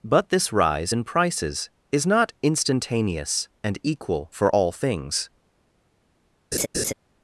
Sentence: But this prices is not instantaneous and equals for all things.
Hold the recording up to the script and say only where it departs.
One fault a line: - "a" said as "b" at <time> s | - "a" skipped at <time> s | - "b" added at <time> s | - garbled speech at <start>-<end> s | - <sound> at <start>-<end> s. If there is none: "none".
- "rise in" added at 0.5 s
- "equals" said as "equal" at 3.8 s
- laugh at 6.5-6.9 s